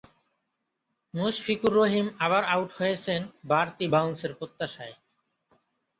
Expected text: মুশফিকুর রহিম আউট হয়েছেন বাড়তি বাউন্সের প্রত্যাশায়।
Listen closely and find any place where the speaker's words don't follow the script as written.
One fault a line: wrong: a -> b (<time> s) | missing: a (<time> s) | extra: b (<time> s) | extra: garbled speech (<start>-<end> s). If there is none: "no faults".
extra: আবার (2.2 s)